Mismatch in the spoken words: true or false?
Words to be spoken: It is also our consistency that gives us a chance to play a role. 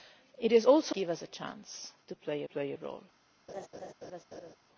true